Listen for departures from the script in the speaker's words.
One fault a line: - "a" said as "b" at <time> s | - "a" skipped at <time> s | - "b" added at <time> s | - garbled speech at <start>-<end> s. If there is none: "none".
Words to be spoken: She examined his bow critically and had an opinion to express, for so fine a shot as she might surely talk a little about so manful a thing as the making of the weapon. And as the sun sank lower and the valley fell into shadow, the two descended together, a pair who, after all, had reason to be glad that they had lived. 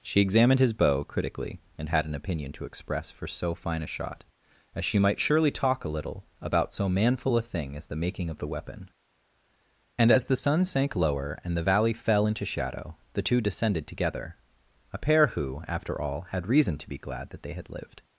none